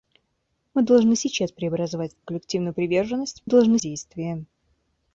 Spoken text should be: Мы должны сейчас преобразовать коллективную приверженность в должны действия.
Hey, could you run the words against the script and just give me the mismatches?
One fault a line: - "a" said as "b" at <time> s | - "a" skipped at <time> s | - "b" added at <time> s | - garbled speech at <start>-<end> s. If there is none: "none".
none